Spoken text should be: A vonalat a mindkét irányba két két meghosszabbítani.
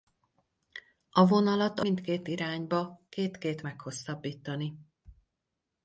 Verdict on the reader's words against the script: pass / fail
pass